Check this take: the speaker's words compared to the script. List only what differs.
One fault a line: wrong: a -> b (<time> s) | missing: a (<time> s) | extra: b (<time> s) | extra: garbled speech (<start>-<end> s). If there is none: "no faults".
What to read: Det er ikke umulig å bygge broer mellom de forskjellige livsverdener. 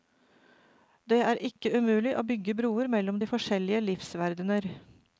no faults